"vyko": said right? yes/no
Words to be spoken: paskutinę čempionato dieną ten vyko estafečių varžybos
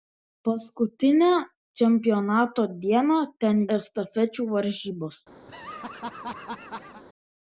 no